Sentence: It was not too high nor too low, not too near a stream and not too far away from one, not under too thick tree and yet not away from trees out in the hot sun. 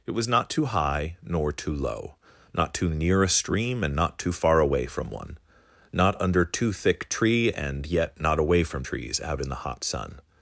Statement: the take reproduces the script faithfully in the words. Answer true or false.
true